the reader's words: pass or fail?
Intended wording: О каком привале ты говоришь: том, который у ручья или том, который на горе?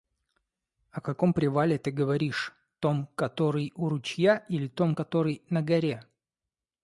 pass